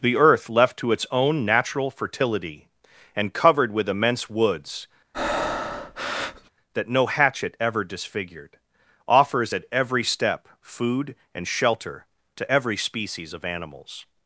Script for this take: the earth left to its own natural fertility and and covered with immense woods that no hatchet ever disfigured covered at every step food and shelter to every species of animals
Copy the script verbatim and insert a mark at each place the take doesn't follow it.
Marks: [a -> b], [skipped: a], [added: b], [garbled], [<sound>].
the earth left to its own natural fertility and [skipped: and] covered with immense woods [breath] that no hatchet ever disfigured [covered -> offers] at every step food and shelter to every species of animals